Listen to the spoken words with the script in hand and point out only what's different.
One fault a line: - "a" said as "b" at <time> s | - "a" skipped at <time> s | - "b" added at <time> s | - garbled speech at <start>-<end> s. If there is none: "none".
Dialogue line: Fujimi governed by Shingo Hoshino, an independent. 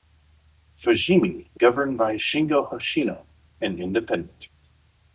none